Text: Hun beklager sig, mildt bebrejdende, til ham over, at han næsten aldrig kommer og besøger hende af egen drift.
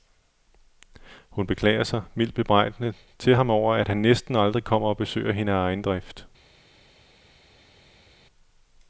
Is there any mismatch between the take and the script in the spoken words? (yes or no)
no